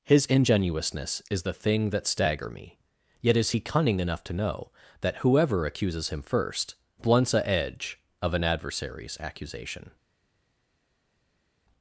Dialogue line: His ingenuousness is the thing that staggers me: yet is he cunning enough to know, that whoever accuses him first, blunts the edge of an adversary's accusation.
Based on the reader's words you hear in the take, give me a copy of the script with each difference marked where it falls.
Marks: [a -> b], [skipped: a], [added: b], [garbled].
His ingenuousness is the thing that [staggers -> stagger] me: yet is he cunning enough to know, that whoever accuses him first, blunts [the -> a] edge of an adversary's accusation.